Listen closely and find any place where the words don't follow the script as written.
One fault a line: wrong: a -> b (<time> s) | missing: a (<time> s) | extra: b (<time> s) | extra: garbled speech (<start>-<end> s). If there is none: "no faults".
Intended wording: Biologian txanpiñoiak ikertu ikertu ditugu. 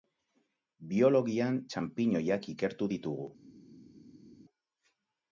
missing: ikertu (2.9 s)